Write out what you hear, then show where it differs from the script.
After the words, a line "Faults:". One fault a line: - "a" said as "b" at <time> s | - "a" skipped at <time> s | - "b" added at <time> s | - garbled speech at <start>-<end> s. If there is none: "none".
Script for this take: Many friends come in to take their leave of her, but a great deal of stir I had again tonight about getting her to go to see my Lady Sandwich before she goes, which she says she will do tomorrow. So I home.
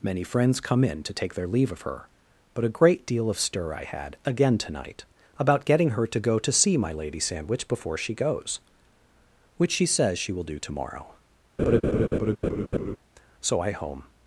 Many friends come in to take their leave of her, but a great deal of stir I had again tonight about getting her to go to see my Lady Sandwich before she goes, which she says she will do tomorrow. So I home.
Faults:
none